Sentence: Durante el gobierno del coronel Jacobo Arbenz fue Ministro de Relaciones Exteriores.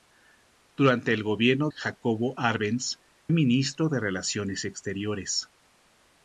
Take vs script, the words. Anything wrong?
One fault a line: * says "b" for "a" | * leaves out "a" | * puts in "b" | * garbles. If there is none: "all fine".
* leaves out "del coronel"
* leaves out "fue"